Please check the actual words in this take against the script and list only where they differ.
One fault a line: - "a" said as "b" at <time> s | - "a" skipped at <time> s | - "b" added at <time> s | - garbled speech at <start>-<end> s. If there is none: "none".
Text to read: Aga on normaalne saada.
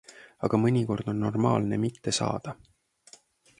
- "mõnikord" added at 0.6 s
- "mitte" added at 1.8 s